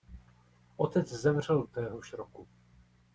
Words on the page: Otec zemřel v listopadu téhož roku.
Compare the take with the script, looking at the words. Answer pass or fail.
fail